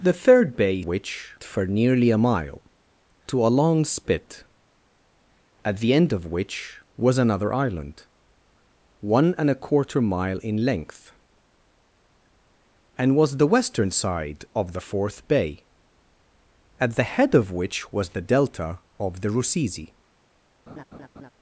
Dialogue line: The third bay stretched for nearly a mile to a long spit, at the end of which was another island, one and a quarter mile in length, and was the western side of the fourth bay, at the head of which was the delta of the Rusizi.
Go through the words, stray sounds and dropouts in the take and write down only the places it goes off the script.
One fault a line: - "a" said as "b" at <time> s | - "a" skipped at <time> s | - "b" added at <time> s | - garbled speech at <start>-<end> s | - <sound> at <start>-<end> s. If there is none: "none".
- "stretched" said as "which" at 0.8 s
- laugh at 20.7-21.3 s